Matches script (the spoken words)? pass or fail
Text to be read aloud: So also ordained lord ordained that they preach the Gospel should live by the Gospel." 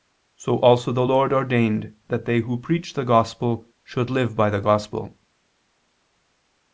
fail